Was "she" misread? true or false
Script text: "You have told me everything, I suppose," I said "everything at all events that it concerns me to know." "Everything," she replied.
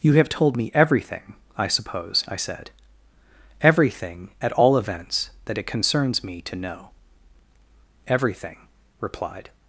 true